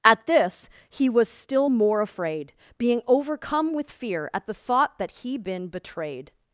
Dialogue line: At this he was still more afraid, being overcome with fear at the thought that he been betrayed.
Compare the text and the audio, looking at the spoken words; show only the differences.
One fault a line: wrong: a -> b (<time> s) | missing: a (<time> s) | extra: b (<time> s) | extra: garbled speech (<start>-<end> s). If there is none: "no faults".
no faults